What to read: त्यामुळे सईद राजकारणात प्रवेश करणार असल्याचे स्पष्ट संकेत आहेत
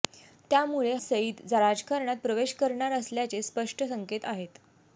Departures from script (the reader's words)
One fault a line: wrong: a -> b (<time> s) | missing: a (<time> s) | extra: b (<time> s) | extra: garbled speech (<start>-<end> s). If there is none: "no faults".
no faults